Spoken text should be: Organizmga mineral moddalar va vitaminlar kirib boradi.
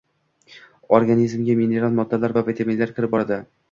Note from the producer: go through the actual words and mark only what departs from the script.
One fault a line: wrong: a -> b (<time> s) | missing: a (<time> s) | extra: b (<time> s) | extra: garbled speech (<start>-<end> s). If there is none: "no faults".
no faults